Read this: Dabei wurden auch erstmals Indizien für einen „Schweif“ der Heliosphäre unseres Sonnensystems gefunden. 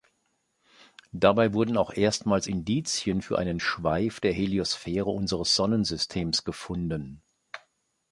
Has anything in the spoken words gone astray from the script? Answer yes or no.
no